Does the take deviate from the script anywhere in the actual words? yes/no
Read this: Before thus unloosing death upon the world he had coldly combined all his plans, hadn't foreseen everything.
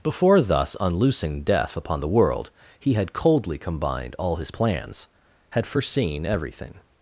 yes